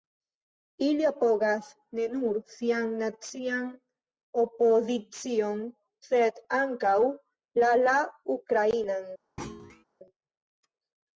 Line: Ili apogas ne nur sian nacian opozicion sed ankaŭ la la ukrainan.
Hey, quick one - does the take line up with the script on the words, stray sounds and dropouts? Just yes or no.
no